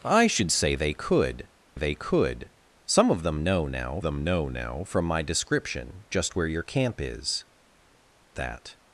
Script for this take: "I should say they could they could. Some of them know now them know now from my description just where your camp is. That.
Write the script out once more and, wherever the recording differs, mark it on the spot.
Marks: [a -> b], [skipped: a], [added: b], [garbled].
"I should say they could they could. Some of them know now them know now from my description just where your camp is. That.